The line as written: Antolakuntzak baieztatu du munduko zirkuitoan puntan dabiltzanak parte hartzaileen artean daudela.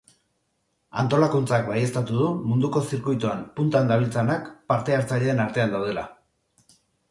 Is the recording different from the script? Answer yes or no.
no